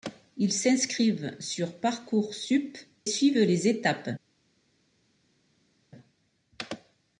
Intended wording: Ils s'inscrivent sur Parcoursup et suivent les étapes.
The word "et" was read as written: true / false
false